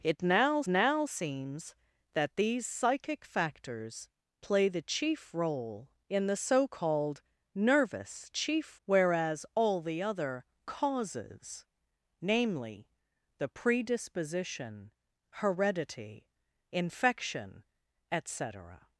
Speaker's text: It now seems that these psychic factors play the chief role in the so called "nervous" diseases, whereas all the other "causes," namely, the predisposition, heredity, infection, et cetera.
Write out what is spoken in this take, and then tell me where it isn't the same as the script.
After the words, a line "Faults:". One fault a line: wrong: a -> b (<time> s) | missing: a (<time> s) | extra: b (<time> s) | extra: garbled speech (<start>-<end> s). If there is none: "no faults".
It now now seems that these psychic factors play the chief role in the so called "nervous" chief, whereas all the other "causes," namely, the predisposition, heredity, infection, et cetera.
Faults:
extra: now (0.7 s)
wrong: diseases -> chief (8.3 s)